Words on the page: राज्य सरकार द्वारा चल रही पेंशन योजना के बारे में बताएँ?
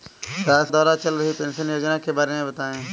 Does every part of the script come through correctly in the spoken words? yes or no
no